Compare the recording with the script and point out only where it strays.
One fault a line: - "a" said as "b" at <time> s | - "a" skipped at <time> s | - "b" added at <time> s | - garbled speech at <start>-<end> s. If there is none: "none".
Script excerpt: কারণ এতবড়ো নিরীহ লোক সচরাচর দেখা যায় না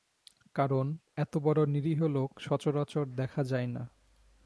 none